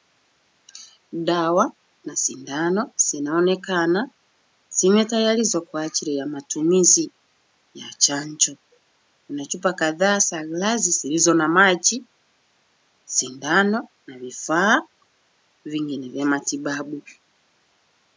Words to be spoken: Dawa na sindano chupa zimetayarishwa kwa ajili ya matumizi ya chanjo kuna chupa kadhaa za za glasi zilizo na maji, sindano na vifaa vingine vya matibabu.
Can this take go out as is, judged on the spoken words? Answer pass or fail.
fail